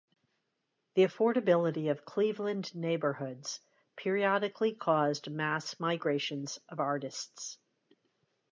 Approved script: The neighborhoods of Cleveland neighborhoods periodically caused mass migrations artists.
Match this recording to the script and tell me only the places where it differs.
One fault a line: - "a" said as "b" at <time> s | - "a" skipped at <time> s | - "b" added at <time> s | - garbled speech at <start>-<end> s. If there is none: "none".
- "neighborhoods" said as "affordability" at 1.0 s
- "of" added at 6.7 s